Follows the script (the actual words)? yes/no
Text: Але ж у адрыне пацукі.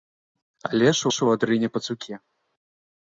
no